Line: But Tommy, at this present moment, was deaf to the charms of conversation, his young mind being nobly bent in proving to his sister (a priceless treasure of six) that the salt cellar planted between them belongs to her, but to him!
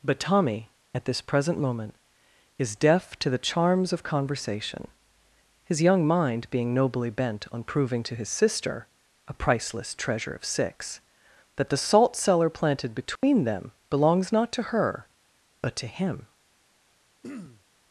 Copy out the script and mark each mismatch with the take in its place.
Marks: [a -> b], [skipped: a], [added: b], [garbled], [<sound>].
But Tommy, at this present moment, [was -> is] deaf to the charms of conversation, his young mind being nobly bent [in -> on] proving to his sister (a priceless treasure of six) that the salt cellar planted between [dropout] them belongs [added: not] to her, but to him! [throat clearing]